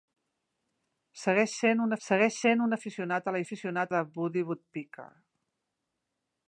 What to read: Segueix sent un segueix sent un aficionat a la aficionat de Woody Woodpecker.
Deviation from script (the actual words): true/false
false